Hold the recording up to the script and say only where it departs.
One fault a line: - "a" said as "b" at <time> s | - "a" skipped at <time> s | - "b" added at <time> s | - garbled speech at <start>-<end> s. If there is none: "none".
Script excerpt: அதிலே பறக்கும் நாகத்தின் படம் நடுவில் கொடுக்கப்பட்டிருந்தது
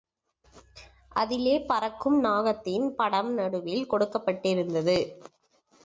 none